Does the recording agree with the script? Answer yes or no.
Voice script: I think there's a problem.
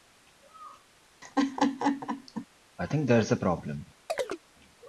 yes